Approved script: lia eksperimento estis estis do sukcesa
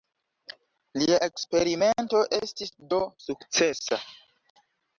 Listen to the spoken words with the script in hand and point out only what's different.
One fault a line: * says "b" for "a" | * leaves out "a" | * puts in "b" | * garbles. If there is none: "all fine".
* leaves out "estis"